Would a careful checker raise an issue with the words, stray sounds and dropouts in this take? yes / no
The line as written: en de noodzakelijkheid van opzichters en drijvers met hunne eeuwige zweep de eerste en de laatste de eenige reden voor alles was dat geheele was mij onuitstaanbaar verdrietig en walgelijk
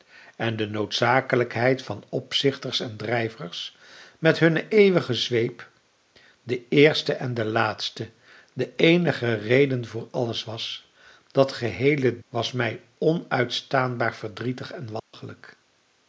yes